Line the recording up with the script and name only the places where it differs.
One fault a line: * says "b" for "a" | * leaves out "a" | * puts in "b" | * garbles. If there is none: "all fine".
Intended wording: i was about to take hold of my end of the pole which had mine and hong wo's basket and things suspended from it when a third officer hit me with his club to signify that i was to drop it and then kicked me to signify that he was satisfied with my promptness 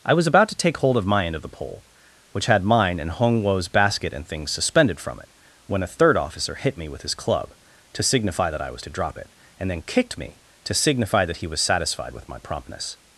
all fine